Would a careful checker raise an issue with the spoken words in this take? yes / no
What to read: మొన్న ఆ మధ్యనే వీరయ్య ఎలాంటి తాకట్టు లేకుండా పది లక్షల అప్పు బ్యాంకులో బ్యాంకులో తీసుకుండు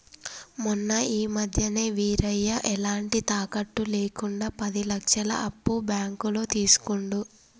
yes